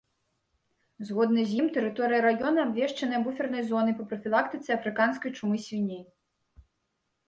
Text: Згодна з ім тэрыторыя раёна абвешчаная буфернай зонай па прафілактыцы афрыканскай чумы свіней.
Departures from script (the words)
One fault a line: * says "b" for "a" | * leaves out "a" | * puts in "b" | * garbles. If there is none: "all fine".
all fine